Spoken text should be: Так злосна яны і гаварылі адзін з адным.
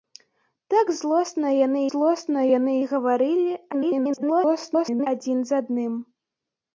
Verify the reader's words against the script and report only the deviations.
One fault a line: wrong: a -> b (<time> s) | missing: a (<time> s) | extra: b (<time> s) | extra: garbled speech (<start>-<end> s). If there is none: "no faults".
extra: злосна яны (1.9 s)
extra: garbled speech (3.7-5.1 s)